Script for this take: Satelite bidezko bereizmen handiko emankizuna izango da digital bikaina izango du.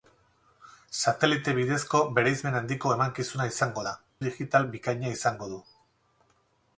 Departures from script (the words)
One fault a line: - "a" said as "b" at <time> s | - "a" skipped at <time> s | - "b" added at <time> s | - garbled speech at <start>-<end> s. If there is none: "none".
none